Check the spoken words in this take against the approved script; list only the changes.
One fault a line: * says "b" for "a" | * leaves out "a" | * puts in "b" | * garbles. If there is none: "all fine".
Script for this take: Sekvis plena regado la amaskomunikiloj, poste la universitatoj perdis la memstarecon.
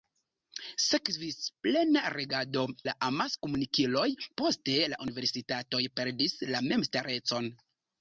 all fine